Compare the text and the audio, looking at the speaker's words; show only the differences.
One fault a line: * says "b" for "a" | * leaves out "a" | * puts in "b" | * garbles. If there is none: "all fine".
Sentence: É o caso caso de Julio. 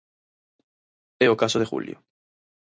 * leaves out "caso"